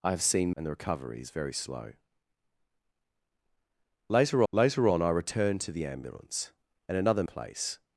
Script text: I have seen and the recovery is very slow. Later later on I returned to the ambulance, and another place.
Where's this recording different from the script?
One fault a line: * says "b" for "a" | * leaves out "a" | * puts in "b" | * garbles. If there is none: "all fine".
all fine